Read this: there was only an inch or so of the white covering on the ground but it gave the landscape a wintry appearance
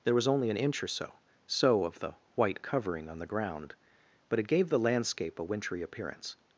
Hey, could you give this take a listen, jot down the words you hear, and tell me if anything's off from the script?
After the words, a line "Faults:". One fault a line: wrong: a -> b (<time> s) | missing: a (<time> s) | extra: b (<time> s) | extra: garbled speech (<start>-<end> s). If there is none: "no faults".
there was only an inch or so so of the white covering on the ground but it gave the landscape a wintry appearance
Faults:
extra: so (1.4 s)